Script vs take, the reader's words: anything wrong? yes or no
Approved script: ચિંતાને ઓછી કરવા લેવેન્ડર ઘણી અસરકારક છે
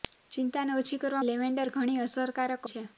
no